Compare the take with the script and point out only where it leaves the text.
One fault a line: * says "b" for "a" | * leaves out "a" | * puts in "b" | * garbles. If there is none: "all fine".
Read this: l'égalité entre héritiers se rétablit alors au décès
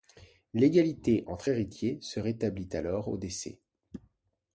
all fine